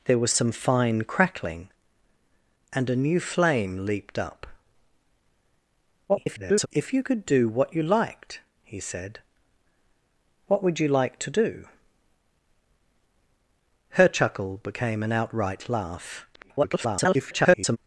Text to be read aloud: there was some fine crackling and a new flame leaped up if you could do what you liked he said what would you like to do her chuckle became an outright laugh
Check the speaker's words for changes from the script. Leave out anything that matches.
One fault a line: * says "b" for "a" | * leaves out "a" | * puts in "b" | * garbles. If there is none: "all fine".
* garbles
* garbles